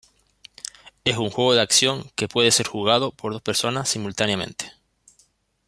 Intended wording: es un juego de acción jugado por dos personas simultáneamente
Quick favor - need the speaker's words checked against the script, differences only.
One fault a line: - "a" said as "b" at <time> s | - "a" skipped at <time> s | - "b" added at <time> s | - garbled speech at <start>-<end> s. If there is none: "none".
- "que puede ser" added at 2.1 s